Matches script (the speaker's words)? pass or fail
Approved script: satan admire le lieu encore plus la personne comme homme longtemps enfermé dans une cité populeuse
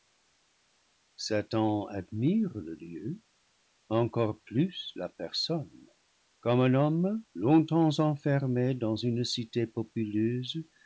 fail